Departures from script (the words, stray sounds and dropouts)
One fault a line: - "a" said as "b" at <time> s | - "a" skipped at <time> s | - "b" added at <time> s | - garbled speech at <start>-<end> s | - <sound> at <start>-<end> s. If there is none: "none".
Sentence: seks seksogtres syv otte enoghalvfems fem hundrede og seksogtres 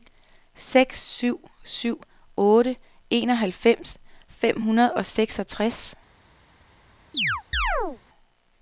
- "seksogtres" said as "syv" at 1.0 s
- chirp at 7.1-8.0 s